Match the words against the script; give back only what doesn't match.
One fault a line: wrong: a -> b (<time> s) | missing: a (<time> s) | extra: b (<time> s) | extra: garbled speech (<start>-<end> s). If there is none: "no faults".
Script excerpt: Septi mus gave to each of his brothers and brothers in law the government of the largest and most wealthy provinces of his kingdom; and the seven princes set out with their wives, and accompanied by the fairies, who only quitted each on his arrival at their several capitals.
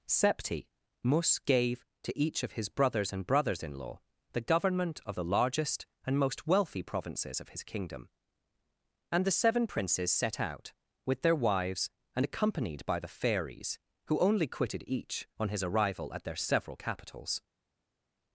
no faults